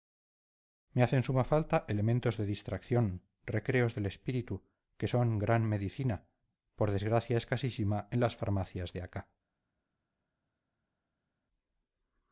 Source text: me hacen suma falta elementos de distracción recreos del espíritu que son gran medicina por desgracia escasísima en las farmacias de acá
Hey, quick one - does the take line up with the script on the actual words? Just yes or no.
yes